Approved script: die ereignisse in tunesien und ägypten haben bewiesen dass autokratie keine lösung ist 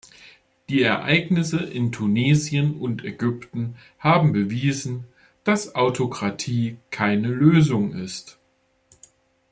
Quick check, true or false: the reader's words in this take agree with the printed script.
true